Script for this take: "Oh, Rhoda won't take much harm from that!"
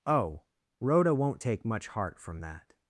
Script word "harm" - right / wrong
wrong